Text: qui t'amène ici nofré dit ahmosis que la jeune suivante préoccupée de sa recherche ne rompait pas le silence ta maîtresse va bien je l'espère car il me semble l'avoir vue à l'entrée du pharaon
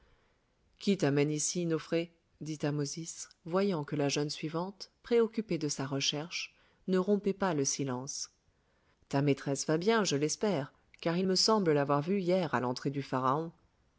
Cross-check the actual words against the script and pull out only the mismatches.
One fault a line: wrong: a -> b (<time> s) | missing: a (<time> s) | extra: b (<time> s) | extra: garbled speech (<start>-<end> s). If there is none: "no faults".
extra: voyant (3.5 s)
extra: hier (12.2 s)